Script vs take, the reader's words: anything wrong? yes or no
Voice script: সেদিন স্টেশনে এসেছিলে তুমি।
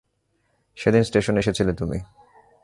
no